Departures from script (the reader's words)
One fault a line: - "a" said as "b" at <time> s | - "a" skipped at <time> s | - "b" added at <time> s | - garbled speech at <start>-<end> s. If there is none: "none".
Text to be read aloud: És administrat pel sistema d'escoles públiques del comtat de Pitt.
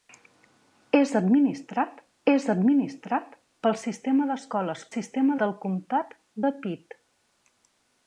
- "és administrat" added at 2.3 s
- "públiques" said as "sistema" at 4.9 s